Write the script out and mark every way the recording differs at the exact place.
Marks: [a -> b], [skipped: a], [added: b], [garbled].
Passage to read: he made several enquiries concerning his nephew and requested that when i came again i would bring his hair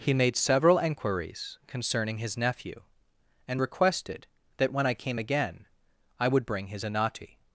he made several enquiries concerning his nephew and requested that when i came again i would bring his [hair -> anati]